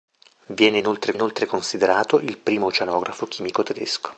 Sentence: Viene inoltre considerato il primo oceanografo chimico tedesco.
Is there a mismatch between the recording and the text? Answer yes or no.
yes